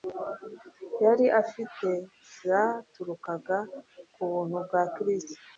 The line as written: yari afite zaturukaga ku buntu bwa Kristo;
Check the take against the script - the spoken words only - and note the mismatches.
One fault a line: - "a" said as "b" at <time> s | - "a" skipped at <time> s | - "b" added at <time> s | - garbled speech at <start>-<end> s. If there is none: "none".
none